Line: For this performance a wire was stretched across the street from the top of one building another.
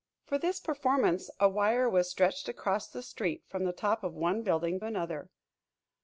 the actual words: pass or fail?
pass